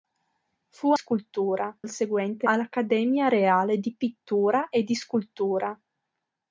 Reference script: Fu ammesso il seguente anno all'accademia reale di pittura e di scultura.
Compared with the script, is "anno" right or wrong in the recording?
wrong